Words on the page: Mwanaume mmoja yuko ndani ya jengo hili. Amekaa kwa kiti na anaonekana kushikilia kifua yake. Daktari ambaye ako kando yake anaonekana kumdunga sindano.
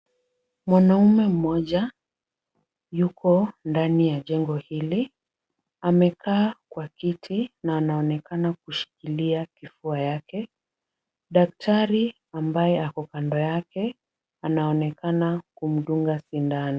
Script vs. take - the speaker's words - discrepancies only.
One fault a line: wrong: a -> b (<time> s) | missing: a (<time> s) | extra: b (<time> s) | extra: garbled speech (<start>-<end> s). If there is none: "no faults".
no faults